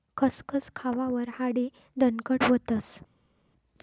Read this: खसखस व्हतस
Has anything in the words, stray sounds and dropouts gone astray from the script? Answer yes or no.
yes